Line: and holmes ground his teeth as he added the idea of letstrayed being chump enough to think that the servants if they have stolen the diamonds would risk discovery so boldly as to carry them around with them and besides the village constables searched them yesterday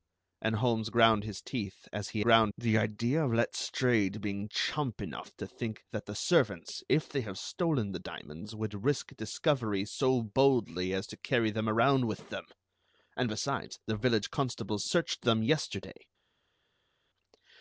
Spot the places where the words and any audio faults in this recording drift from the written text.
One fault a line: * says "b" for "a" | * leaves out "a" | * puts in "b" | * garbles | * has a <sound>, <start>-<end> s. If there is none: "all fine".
* says "ground" for "added"